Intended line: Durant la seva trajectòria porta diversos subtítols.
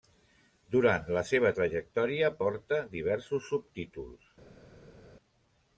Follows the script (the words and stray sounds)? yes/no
yes